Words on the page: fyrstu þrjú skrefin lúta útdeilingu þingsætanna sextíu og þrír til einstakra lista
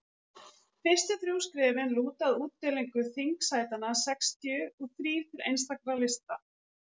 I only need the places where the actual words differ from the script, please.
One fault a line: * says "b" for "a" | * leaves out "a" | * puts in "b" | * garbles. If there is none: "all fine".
* puts in "að"